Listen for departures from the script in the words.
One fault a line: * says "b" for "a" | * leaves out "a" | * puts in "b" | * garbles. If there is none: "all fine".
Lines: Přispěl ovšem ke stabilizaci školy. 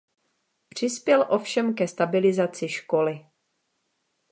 all fine